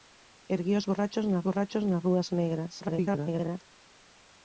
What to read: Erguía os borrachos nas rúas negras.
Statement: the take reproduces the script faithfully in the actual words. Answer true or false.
false